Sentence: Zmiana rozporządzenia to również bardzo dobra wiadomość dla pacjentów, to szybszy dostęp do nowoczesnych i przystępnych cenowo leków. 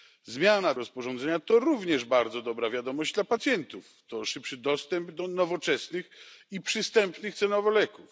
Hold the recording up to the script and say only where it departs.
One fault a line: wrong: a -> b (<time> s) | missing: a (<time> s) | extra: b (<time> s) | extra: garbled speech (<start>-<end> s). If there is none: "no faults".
no faults